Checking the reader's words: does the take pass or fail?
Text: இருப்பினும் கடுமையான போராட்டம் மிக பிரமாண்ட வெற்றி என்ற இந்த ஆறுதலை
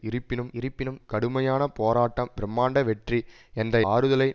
fail